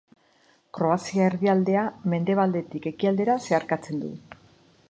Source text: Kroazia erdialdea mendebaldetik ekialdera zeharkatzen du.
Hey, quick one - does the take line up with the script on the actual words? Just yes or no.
yes